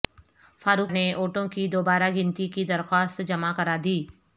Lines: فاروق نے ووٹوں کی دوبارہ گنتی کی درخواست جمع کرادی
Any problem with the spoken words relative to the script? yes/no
no